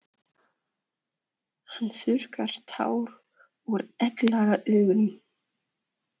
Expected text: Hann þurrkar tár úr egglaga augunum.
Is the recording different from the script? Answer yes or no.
no